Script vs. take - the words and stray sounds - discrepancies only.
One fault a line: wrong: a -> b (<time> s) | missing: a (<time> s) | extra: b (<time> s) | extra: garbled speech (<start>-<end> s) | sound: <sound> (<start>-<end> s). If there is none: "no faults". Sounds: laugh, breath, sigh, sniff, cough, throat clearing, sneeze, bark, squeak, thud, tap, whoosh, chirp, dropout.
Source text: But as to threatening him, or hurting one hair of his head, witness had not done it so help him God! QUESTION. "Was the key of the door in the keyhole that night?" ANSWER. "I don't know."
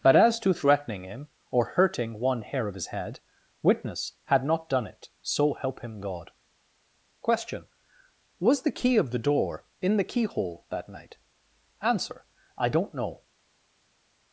no faults